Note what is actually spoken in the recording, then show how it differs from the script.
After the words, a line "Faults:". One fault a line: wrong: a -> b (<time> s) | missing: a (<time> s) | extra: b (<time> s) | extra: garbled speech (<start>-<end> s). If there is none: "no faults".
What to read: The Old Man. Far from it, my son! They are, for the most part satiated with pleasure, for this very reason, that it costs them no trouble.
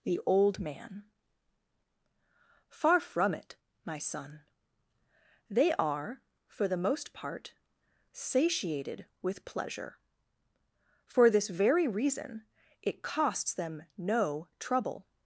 The Old Man. Far from it, my son! They are, for the most part satiated with pleasure, for this very reason, it costs them no trouble.
Faults:
missing: that (12.4 s)